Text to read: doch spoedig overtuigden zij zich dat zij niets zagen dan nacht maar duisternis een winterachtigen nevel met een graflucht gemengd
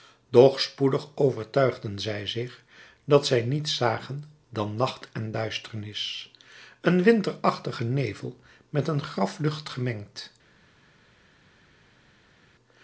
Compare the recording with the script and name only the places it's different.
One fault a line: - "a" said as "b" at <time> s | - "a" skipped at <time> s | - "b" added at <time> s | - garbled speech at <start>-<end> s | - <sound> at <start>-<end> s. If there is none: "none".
- "maar" said as "en" at 5.1 s